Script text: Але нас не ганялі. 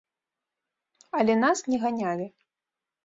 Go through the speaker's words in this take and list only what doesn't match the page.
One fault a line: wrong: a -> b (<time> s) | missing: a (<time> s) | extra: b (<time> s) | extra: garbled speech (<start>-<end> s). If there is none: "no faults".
no faults